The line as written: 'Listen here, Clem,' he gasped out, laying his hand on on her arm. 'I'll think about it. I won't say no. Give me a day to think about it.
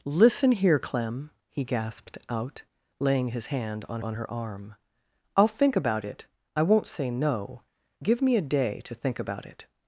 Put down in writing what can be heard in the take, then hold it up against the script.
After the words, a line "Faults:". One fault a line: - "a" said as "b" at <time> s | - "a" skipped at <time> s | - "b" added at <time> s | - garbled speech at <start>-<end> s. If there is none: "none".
'Listen here, Clem,' he gasped out, laying his hand on on her arm. 'I'll think about it. I won't say no. Give me a day to think about it.
Faults:
none